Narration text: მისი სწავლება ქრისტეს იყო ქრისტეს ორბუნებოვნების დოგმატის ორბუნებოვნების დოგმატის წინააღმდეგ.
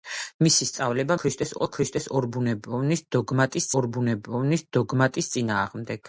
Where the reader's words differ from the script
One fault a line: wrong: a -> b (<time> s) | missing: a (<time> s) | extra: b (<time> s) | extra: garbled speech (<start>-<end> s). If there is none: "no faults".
no faults